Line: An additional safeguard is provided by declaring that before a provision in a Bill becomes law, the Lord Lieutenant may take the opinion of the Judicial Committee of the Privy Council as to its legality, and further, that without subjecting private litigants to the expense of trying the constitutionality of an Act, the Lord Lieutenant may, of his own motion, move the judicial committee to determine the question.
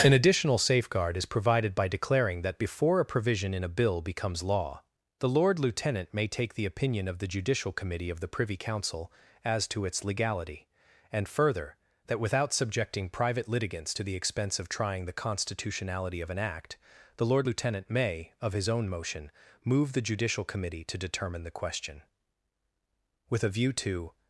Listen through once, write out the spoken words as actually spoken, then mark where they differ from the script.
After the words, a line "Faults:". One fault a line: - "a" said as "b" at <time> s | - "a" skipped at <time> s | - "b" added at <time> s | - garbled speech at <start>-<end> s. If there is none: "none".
An additional safeguard is provided by declaring that before a provision in a Bill becomes law, the Lord Lieutenant may take the opinion of the Judicial Committee of the Privy Council as to its legality, and further, that without subjecting private litigants to the expense of trying the constitutionality of an Act, the Lord Lieutenant may, of his own motion, move the judicial committee to determine the question. With a view to
Faults:
- "With a view to" added at 23.3 s